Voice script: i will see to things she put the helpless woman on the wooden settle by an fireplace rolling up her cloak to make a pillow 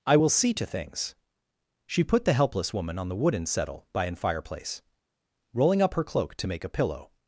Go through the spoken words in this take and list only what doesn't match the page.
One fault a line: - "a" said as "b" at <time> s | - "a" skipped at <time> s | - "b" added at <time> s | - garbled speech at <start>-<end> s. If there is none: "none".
none